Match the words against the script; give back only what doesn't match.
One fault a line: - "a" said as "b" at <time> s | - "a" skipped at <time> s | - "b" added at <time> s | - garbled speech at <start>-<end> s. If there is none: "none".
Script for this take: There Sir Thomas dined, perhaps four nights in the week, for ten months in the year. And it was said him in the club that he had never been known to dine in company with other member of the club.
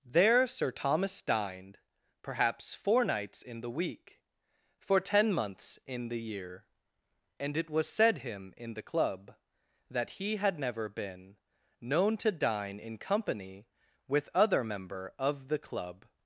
none